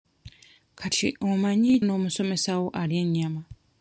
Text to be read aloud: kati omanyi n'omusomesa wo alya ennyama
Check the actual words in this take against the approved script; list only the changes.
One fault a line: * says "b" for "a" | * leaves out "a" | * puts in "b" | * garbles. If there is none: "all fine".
all fine